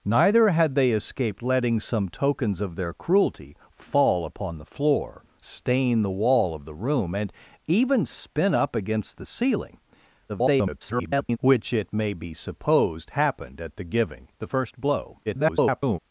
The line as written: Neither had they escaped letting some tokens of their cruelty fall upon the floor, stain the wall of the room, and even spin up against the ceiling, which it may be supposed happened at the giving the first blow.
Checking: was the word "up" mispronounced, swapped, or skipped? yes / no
no